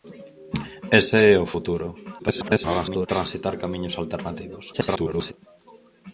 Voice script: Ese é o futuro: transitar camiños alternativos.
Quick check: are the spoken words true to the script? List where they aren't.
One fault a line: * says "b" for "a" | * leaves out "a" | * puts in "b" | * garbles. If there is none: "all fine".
* garbles
* garbles